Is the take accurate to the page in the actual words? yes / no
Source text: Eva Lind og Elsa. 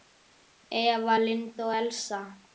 yes